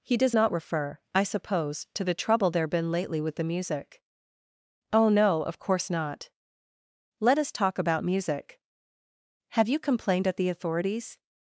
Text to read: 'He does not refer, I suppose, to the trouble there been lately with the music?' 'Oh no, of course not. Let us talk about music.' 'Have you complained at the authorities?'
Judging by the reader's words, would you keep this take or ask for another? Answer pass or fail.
pass